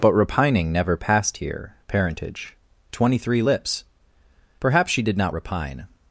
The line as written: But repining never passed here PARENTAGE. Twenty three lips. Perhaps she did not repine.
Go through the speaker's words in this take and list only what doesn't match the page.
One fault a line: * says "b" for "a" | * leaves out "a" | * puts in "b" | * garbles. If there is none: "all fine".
all fine